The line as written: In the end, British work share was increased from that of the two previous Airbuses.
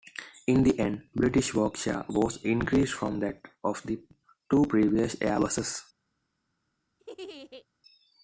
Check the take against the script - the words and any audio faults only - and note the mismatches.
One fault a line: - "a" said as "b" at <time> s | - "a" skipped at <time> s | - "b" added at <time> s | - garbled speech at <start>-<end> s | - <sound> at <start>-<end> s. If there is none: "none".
- laugh at 7.0-7.7 s